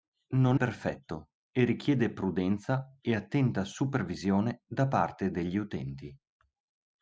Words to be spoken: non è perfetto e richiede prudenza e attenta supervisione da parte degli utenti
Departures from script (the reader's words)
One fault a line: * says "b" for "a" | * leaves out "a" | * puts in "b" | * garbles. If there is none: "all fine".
* leaves out "è"